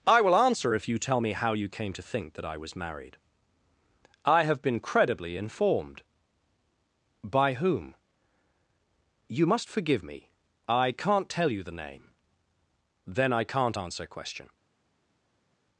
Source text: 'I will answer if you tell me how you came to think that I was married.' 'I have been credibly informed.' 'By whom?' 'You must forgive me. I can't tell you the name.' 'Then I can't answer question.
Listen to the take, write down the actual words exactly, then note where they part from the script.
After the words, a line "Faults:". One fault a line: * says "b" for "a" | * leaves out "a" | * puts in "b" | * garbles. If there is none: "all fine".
'I will answer if you tell me how you came to think that I was married.' 'I have been credibly informed.' 'By whom?' 'You must forgive me. I can't tell you the name.' 'Then I can't answer question.
Faults:
all fine